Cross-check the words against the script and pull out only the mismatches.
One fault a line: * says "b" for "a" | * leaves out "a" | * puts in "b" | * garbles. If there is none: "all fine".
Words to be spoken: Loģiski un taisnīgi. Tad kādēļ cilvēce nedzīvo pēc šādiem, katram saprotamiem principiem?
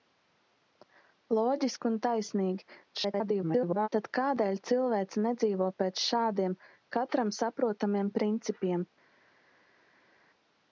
* garbles